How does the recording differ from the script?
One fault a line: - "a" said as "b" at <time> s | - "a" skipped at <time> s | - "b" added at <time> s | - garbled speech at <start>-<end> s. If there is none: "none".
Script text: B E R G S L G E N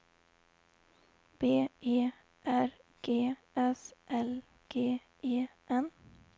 none